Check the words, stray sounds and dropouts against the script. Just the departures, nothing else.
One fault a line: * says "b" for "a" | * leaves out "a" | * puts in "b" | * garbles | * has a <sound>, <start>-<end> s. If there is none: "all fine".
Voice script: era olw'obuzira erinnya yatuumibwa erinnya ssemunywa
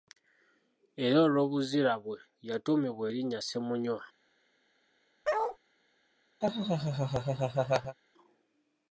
* says "bwe" for "erinnya"
* has a bark, 5.2-5.6 s
* has a laugh, 6.4-8.0 s